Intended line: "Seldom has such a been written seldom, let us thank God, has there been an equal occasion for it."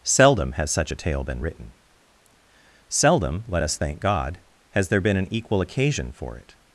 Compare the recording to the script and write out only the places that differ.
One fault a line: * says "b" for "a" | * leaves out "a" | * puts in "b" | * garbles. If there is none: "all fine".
* puts in "tale"